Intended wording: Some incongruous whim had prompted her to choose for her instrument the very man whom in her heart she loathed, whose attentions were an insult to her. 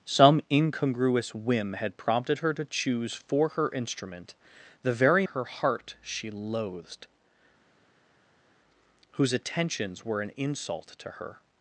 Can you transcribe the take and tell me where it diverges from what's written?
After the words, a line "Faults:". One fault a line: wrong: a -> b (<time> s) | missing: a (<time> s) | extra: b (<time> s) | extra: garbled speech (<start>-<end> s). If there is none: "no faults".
Some incongruous whim had prompted her to choose for her instrument the very her heart she loathed, whose attentions were an insult to her.
Faults:
missing: man whom in (5.3 s)